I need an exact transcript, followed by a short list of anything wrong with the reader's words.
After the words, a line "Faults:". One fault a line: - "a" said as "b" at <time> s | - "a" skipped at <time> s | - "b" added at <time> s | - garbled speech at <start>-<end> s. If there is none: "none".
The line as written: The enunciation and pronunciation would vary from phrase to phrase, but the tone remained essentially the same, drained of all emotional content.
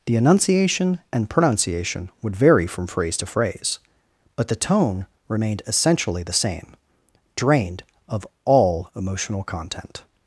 The enunciation and pronunciation would vary from phrase to phrase, but the tone remained essentially the same, drained of all emotional content.
Faults:
none